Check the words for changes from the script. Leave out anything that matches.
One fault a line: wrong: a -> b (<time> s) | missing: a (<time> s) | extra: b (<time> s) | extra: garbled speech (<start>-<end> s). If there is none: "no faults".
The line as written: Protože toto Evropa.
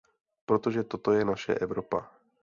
extra: je naše (1.1 s)